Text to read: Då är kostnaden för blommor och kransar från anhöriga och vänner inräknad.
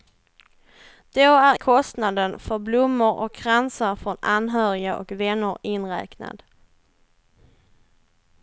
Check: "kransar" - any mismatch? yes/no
no